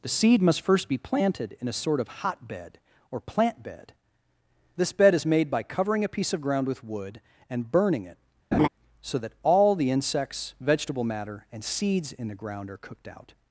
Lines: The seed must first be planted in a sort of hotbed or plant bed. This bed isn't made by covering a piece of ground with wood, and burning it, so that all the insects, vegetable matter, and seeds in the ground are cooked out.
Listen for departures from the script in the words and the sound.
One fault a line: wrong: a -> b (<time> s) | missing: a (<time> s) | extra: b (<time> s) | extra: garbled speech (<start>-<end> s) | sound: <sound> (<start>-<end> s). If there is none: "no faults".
wrong: isn't -> is (5.1 s)
sound: laugh (8.5-8.7 s)